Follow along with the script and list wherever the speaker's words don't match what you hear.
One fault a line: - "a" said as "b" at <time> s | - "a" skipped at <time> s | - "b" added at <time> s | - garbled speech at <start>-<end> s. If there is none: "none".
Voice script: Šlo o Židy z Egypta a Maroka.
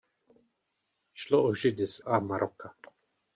- "Egypta" skipped at 2.0 s